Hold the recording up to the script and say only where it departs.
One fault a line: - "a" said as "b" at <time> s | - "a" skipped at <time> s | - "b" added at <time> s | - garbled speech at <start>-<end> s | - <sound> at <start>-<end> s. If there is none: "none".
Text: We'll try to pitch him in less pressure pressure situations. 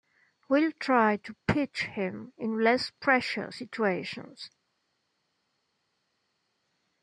- "pressure" skipped at 3.5 s